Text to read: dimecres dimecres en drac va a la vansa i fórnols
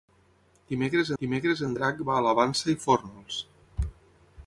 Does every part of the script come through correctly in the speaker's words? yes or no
yes